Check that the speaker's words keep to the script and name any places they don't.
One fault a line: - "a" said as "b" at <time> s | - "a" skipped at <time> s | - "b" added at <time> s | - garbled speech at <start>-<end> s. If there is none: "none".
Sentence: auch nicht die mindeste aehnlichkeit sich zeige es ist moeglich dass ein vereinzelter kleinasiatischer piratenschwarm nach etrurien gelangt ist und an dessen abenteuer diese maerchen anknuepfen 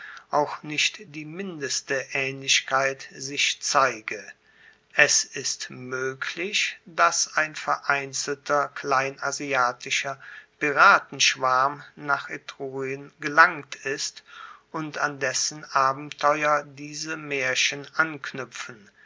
none